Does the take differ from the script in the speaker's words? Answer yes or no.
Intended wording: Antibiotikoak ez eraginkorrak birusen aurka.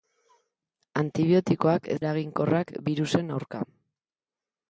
no